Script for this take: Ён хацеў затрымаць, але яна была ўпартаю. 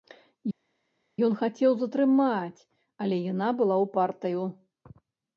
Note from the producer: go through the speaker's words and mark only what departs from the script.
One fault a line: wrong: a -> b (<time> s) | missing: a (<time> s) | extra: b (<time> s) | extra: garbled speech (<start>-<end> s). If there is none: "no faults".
no faults